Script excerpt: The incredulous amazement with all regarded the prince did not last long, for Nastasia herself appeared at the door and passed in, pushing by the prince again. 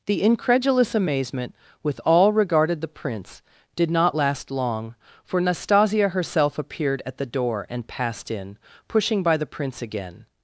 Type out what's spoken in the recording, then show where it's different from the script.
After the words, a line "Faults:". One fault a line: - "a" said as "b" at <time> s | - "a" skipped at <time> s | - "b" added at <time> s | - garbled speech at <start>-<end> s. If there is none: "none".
The incredulous amazement with all regarded the prince did not last long, for Nastasia herself appeared at the door and passed in, pushing by the prince again.
Faults:
none